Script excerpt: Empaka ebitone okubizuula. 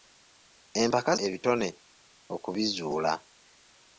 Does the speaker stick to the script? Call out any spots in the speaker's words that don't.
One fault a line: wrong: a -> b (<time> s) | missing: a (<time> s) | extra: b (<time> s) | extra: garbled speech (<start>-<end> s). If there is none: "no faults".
no faults